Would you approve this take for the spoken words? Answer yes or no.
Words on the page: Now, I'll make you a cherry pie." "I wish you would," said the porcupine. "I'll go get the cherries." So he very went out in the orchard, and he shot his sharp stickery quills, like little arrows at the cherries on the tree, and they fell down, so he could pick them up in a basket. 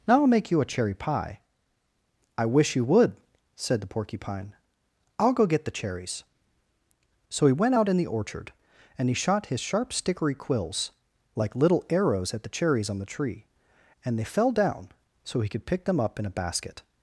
no